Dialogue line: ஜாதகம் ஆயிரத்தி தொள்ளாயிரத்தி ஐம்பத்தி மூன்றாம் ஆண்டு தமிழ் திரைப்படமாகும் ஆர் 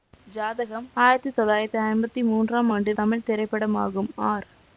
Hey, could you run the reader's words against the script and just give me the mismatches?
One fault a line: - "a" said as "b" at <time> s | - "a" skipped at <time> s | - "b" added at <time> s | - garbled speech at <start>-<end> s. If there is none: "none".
none